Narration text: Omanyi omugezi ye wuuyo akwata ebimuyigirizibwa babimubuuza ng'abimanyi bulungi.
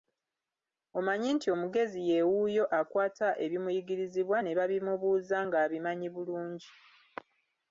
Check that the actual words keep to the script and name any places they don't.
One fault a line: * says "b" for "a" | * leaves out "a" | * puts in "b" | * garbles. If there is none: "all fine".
* puts in "nti"
* puts in "ne"